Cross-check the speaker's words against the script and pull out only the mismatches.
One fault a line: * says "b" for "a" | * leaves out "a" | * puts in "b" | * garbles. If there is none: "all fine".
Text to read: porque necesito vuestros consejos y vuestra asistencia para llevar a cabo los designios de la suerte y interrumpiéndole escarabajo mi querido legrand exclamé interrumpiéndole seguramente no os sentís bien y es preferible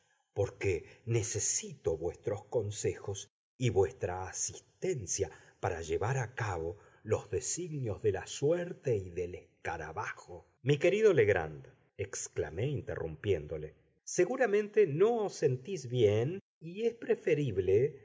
* says "del" for "interrumpiéndole"